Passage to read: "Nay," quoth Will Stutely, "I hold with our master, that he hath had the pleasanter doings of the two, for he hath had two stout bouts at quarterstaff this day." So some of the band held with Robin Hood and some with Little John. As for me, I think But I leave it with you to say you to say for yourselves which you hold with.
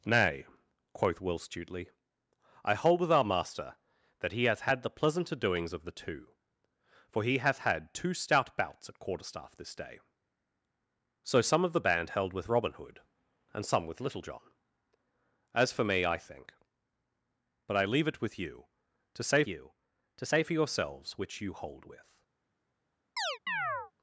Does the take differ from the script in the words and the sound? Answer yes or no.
yes